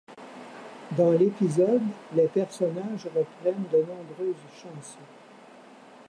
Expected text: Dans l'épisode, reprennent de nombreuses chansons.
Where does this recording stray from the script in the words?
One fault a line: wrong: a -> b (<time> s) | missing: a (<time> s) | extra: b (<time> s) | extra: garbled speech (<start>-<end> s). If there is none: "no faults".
extra: les personnages (2.1 s)